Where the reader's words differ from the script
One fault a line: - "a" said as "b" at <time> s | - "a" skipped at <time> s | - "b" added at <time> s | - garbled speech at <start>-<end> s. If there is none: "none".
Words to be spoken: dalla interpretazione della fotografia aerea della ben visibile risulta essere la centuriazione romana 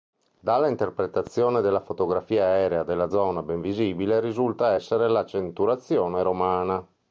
- "zona" added at 3.1 s